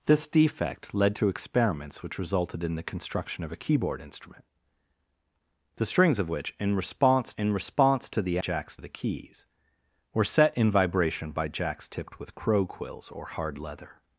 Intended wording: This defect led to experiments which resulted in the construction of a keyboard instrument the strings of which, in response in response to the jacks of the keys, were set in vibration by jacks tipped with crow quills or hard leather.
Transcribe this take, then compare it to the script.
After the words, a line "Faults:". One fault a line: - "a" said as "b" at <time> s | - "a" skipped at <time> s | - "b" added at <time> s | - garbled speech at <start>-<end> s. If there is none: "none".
This defect led to experiments which resulted in the construction of a keyboard instrument the strings of which, in response in response to the jacks of the keys, were set in vibration by jacks tipped with crow quills or hard leather.
Faults:
none